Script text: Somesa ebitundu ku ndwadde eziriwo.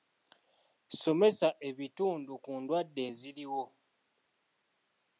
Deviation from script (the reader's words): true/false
false